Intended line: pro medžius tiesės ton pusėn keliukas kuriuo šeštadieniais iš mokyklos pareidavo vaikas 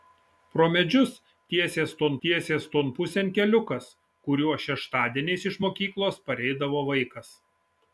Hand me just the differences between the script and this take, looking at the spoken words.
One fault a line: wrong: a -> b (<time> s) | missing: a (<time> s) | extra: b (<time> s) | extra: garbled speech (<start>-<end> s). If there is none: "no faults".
extra: tiesės ton (2.3 s)